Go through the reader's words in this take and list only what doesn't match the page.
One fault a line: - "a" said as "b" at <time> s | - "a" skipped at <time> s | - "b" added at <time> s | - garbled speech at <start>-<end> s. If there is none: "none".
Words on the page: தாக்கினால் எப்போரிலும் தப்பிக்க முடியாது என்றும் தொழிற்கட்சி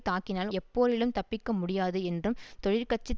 none